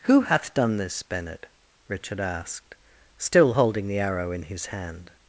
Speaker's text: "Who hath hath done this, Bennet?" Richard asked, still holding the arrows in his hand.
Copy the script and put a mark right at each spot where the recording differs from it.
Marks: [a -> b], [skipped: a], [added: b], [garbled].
"Who hath [skipped: hath] done this, Bennet?" Richard asked, still holding the [arrows -> arrow] in his hand.